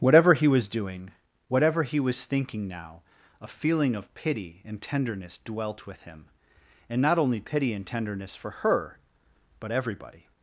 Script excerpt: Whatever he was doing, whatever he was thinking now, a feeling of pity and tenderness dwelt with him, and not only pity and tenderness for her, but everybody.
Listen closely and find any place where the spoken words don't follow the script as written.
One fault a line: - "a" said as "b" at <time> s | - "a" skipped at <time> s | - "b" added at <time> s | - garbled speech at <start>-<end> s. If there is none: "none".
none